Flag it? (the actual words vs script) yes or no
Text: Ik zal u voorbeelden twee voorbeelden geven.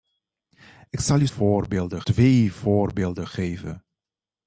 no